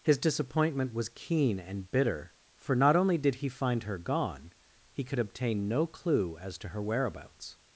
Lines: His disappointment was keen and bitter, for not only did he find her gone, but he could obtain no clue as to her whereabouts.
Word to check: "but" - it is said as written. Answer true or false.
false